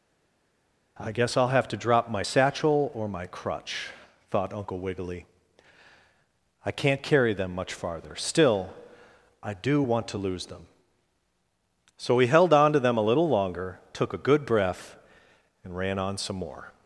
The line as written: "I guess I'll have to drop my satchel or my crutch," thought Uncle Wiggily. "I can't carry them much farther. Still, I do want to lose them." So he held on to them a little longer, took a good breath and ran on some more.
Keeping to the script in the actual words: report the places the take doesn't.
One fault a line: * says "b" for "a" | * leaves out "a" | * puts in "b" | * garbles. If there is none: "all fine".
all fine